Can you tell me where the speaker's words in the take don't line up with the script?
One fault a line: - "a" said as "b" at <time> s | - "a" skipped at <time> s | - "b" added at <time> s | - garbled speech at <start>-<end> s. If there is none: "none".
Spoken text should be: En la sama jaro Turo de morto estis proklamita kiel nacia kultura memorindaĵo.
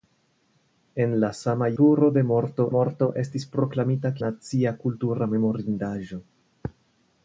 - "jaro" skipped at 1.7 s
- "morto" added at 2.8 s
- "kiel" skipped at 4.1 s